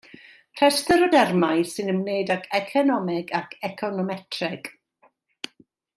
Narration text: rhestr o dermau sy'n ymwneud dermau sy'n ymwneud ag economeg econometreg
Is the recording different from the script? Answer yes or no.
yes